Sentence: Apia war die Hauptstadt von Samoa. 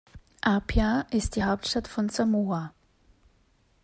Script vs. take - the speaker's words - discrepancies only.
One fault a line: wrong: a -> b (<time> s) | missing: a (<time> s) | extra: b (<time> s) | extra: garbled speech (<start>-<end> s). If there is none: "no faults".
wrong: war -> ist (1.1 s)